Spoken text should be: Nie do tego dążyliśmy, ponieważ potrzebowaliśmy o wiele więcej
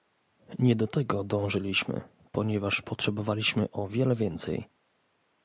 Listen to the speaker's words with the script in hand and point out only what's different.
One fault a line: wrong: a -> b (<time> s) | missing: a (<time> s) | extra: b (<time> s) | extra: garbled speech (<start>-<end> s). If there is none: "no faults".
no faults